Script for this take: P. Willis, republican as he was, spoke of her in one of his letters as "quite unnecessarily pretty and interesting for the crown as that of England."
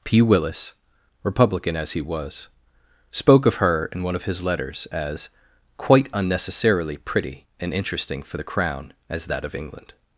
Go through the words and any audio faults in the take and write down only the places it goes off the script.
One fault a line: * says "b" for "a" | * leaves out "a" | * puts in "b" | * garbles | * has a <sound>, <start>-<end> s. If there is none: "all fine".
all fine